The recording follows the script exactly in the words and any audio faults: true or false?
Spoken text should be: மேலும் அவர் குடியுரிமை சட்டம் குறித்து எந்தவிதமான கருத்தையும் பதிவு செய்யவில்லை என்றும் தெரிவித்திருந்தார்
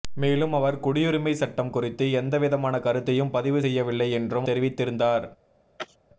false